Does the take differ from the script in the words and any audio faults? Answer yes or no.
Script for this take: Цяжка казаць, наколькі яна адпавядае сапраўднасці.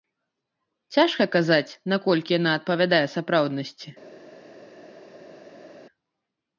no